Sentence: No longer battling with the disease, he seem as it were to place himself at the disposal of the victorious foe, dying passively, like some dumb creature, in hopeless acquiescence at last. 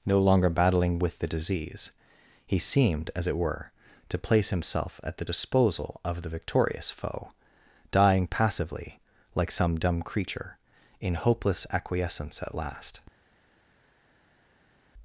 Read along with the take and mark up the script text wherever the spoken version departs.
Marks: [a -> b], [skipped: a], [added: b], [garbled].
No longer battling with the disease, he [seem -> seemed] as it were to place himself at the disposal of the victorious foe, dying passively, like some dumb creature, in hopeless acquiescence at last.